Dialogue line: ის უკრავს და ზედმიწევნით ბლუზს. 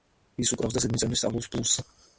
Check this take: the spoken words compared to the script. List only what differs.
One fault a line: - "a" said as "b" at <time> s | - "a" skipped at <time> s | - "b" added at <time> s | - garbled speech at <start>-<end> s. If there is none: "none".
- "სწავლობს" added at 1.2 s